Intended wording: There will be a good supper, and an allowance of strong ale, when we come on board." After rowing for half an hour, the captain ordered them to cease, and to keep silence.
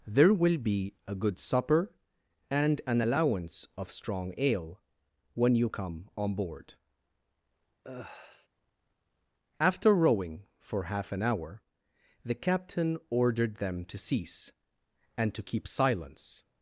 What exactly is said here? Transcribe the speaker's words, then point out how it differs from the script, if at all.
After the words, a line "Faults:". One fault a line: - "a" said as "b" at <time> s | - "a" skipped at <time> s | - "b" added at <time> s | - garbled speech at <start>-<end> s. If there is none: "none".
There will be a good supper, and an allowance of strong ale, when you come on board." After rowing for half an hour, the captain ordered them to cease, and to keep silence.
Faults:
- "we" said as "you" at 5.6 s